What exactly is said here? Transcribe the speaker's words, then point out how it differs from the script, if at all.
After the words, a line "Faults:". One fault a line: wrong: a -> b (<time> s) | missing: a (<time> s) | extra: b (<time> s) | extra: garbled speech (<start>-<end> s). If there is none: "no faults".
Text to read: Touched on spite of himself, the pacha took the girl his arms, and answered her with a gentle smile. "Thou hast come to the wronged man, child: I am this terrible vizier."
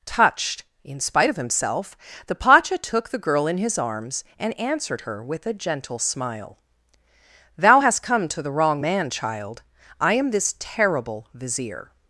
Touched in spite of himself, the pacha took the girl in his arms, and answered her with a gentle smile. "Thou hast come to the wrong man, child: I am this terrible vizier."
Faults:
wrong: on -> in (0.8 s)
extra: in (3.5 s)
wrong: wronged -> wrong (8.5 s)